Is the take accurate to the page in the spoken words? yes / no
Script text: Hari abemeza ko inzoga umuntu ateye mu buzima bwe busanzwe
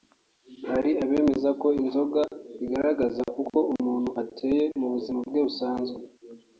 no